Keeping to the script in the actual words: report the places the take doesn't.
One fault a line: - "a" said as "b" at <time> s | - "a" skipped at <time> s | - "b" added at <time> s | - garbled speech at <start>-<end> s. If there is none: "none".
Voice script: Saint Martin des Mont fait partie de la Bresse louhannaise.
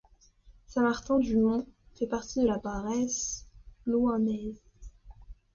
- "des" said as "du" at 1.2 s